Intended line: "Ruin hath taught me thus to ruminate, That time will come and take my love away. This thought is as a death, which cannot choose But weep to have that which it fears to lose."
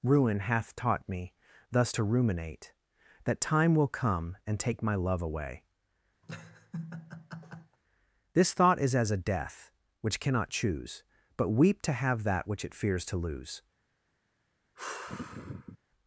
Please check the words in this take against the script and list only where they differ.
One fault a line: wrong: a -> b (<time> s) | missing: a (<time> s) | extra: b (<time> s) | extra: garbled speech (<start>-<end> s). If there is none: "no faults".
no faults